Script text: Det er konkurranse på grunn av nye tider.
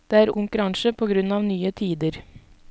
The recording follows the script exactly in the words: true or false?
true